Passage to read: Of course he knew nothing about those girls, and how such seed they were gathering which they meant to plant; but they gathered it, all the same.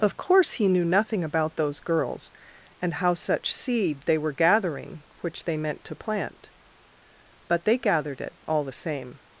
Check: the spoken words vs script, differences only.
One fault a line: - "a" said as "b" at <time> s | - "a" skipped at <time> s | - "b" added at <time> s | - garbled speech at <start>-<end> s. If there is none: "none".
none